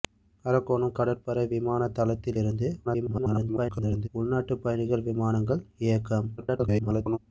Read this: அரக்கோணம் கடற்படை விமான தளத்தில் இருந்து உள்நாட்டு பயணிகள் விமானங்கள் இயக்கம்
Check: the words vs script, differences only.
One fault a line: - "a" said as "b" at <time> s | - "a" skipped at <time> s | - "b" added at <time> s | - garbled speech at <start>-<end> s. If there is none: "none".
- garbled speech at 2.8-4.1 s
- garbled speech at 6.4-7.2 s